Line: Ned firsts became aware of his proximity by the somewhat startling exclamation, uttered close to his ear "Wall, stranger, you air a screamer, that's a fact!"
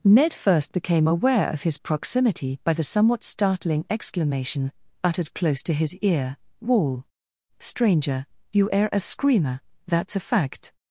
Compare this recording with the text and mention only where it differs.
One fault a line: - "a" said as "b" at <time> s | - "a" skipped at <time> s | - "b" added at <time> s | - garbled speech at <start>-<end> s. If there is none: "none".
- "firsts" said as "first" at 0.3 s